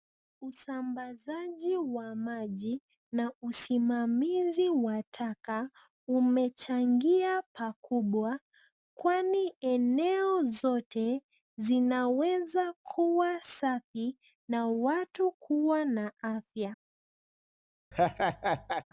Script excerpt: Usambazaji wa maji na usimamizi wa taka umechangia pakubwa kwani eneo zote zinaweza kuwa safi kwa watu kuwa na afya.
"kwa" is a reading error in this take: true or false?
true